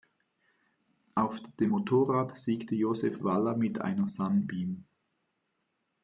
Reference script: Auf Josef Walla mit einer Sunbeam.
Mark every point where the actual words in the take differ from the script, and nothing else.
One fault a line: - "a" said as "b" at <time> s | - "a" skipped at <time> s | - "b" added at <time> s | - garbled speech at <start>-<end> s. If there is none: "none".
- "dem Motorrad siegte" added at 1.6 s